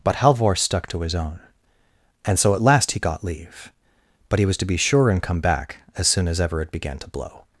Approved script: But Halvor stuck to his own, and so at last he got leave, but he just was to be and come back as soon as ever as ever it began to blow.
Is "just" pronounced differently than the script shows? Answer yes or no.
yes